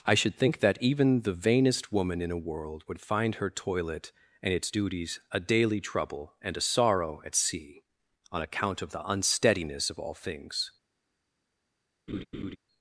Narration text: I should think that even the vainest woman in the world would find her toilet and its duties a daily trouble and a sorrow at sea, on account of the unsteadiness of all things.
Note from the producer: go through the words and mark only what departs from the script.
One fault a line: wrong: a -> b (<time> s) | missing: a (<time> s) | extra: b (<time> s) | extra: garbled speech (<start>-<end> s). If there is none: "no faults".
wrong: the -> a (2.3 s)